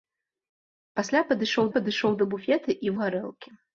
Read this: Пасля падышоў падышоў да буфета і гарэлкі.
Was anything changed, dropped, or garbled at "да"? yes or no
no